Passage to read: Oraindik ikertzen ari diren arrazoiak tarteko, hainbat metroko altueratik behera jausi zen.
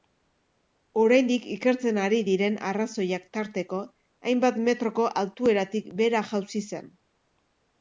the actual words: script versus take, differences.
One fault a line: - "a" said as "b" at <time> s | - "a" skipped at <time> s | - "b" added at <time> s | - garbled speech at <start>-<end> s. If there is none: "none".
none